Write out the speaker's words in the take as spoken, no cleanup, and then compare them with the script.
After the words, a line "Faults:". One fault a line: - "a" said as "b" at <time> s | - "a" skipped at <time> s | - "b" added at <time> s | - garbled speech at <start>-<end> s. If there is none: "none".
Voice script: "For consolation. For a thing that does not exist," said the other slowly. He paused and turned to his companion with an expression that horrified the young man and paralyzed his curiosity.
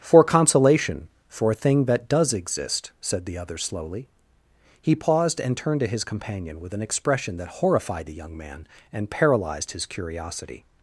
"For consolation. For a thing that does exist," said the other slowly. He paused and turned to his companion with an expression that horrified the young man and paralyzed his curiosity.
Faults:
- "not" skipped at 2.3 s